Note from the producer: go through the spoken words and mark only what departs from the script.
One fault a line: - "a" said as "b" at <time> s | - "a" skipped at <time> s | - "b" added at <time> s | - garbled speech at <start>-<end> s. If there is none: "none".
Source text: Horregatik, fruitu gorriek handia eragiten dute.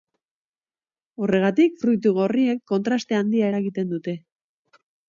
- "kontraste" added at 2.7 s